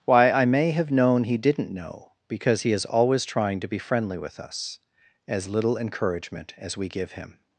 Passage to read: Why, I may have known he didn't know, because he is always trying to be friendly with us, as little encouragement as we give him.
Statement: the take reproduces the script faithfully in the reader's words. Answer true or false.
true